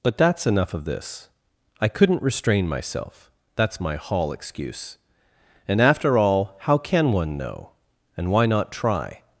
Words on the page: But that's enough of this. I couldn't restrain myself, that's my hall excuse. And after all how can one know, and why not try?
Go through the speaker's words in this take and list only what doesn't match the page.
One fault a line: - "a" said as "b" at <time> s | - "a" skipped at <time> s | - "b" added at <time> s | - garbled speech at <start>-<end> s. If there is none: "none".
none